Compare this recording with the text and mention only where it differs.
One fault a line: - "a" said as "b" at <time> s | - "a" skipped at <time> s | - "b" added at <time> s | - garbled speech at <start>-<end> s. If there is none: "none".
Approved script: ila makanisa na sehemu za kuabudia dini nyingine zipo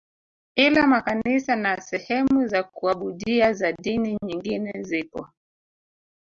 - "za" added at 3.5 s